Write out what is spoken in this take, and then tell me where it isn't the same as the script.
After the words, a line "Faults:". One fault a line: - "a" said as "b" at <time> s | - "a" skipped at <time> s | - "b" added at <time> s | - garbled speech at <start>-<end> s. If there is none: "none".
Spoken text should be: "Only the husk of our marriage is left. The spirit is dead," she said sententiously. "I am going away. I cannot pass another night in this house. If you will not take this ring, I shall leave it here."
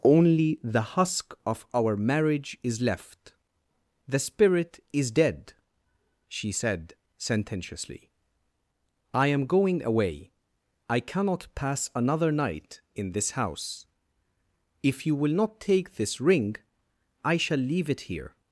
"Only the husk of our marriage is left. The spirit is dead," she said sententiously. "I am going away. I cannot pass another night in this house. If you will not take this ring, I shall leave it here."
Faults:
none